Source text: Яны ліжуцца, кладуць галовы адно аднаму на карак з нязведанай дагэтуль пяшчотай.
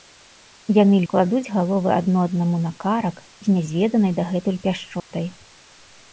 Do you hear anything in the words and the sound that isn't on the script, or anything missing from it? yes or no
yes